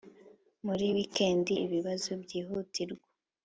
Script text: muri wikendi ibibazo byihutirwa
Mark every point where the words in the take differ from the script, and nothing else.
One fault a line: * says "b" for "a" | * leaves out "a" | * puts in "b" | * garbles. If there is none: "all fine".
all fine